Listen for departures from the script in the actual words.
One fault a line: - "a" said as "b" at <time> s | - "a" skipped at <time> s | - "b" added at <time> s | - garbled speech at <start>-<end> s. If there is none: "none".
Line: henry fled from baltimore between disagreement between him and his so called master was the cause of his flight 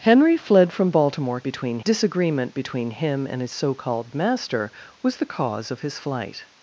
none